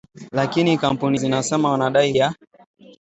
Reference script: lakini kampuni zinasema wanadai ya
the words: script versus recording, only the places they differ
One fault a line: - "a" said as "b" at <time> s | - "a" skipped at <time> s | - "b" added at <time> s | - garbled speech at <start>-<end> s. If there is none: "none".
none